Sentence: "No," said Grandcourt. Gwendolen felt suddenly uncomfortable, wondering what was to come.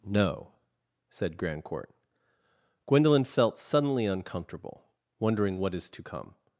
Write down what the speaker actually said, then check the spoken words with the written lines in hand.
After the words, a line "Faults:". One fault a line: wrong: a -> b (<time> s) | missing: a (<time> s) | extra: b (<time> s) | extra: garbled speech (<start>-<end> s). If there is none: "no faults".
"No," said Grandcourt. Gwendolen felt suddenly uncomfortable, wondering what is to come.
Faults:
wrong: was -> is (5.7 s)